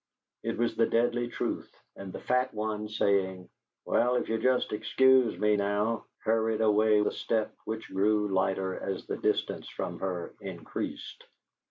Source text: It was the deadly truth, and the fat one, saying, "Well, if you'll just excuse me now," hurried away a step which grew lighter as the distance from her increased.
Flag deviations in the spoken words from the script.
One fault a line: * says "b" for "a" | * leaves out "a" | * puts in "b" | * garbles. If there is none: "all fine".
all fine